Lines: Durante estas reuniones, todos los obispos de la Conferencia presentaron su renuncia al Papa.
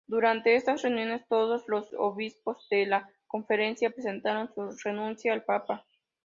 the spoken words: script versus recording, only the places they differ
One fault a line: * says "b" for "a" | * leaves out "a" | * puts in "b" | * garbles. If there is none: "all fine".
all fine